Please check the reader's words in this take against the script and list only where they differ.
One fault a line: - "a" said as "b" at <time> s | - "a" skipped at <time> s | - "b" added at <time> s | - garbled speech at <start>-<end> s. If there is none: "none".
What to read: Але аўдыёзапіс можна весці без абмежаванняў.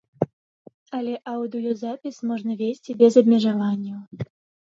none